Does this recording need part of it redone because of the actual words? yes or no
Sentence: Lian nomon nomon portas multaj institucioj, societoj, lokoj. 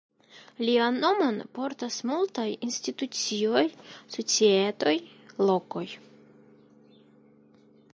yes